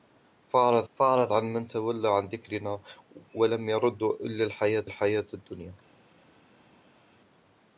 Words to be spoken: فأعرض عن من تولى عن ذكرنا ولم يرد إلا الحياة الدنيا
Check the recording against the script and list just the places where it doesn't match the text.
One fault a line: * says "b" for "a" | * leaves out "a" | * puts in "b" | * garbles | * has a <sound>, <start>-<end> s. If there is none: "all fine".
* puts in "فأعرض"
* puts in "الحياة"